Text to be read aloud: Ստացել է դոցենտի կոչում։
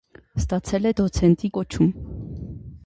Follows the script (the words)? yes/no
yes